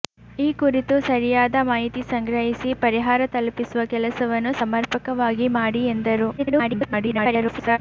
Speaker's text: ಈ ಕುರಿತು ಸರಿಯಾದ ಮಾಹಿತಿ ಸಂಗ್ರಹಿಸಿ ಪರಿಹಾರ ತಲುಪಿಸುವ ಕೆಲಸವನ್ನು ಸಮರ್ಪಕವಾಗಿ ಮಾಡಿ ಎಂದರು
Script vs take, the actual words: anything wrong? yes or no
yes